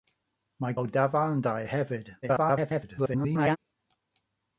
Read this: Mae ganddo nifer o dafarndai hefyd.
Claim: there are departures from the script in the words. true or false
true